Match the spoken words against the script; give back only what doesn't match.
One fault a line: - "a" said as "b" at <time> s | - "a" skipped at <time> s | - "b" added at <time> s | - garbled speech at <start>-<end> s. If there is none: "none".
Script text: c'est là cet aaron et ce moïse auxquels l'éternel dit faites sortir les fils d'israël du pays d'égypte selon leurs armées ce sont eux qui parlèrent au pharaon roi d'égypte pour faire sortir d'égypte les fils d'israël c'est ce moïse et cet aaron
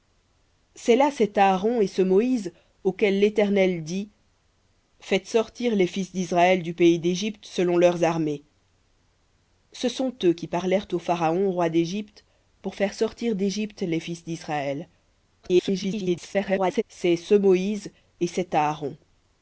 - garbled speech at 15.4-16.8 s